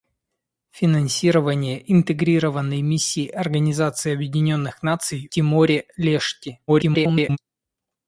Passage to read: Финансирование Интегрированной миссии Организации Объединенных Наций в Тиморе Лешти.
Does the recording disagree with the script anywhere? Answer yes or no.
yes